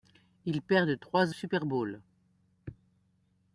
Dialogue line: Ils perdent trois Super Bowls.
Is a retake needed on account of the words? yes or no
no